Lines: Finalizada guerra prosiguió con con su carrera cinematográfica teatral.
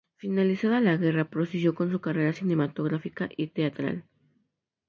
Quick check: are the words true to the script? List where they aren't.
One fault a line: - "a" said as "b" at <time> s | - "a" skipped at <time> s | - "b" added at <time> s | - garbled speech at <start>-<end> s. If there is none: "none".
- "la" added at 0.8 s
- "con" skipped at 1.9 s
- "y" added at 3.3 s